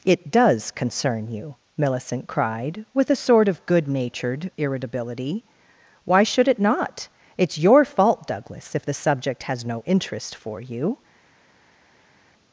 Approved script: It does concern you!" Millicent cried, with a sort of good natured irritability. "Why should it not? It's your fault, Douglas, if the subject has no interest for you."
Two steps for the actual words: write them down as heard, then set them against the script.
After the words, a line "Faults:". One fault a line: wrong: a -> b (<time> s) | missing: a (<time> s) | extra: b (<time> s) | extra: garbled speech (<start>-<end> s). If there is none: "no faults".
It does concern you!" Millicent cried, with a sort of good natured irritability. "Why should it not? It's your fault, Douglas, if the subject has no interest for you."
Faults:
no faults